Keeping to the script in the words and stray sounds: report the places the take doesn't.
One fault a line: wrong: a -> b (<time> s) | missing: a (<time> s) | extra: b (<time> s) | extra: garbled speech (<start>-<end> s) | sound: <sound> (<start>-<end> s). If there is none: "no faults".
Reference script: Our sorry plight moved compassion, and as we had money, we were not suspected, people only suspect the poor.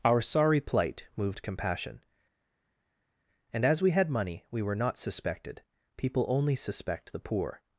no faults